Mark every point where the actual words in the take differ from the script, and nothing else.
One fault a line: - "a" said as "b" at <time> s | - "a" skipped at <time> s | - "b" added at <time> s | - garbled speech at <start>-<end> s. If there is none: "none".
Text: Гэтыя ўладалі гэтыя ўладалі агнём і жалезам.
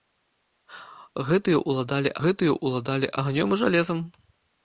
none